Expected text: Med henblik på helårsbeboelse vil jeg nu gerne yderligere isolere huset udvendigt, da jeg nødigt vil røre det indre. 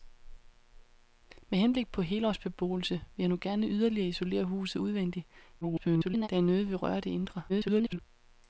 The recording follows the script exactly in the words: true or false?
false